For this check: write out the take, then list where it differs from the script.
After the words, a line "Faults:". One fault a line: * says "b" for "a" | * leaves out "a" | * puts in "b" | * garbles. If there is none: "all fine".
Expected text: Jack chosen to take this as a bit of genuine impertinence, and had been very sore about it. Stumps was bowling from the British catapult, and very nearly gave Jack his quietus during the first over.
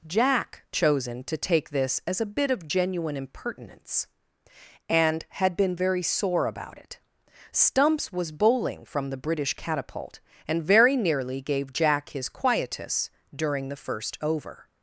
Jack chosen to take this as a bit of genuine impertinence, and had been very sore about it. Stumps was bowling from the British catapult, and very nearly gave Jack his quietus during the first over.
Faults:
all fine